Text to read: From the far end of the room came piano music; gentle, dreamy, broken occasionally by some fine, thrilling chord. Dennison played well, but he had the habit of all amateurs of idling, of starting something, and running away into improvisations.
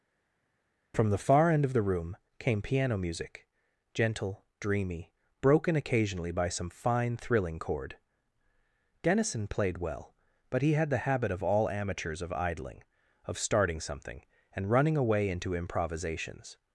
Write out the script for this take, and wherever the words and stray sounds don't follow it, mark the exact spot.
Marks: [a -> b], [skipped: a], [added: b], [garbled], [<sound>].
From the far end of the room came piano music; gentle, dreamy, broken occasionally by some fine, thrilling chord. Dennison played well, but he had the habit of all amateurs of idling, of starting something, and running away into improvisations.